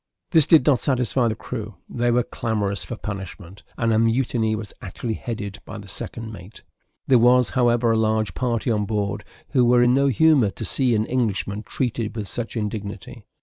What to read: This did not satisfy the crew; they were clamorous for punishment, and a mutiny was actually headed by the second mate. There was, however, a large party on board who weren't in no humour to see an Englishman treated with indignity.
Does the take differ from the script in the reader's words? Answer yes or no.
yes